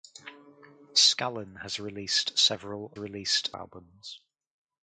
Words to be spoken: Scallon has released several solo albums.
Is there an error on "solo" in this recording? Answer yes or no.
yes